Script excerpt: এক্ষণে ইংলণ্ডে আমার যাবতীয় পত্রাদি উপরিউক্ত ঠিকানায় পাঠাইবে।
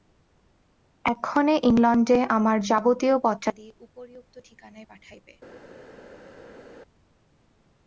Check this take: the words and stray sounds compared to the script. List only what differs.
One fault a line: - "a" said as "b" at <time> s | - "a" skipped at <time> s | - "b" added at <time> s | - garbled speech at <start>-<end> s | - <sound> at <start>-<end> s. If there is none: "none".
none